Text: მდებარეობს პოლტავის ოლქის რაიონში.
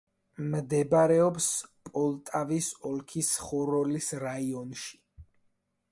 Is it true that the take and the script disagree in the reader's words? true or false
true